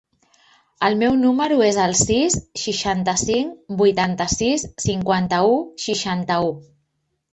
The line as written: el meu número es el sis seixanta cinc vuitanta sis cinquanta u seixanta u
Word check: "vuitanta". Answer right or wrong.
right